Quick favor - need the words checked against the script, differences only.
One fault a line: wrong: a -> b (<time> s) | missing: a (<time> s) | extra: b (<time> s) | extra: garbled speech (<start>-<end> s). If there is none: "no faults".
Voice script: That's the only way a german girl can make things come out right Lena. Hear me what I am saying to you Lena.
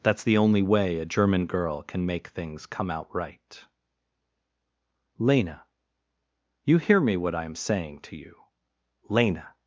extra: You (6.6 s)